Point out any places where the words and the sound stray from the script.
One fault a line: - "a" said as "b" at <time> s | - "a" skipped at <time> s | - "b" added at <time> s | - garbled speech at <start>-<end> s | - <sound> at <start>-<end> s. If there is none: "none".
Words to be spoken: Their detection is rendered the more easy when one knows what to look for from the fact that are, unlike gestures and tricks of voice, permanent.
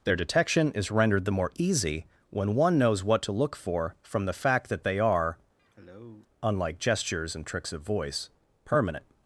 - "they" added at 4.8 s
- cough at 5.6-6.3 s